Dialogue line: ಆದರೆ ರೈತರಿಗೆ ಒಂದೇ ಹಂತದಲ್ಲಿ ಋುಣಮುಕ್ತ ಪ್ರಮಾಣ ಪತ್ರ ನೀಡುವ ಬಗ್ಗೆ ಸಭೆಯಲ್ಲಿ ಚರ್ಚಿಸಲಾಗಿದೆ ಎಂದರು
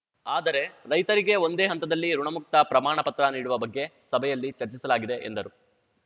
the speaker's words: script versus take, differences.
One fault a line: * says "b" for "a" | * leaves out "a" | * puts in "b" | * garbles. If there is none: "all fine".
all fine